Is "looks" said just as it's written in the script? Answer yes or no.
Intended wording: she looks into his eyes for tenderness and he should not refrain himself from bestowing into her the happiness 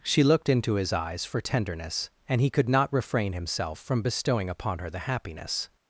no